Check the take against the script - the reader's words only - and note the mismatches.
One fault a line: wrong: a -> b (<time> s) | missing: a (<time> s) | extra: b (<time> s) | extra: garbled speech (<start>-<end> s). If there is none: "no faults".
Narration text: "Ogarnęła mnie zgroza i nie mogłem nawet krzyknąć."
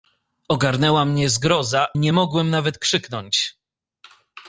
missing: i (1.9 s)